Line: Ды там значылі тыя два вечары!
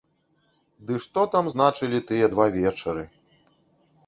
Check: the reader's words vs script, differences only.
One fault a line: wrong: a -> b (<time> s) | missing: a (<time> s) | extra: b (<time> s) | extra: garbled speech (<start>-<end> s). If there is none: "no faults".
extra: што (1.0 s)